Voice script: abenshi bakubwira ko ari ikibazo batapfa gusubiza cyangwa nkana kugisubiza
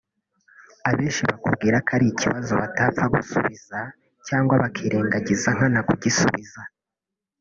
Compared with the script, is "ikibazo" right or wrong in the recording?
right